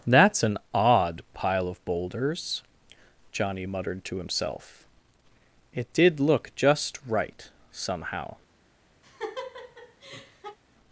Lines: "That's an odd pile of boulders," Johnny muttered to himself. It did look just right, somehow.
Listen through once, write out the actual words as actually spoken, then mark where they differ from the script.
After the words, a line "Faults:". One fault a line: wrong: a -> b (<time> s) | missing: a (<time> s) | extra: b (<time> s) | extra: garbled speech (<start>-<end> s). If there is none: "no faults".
"That's an odd pile of boulders," Johnny muttered to himself. It did look just right, somehow.
Faults:
no faults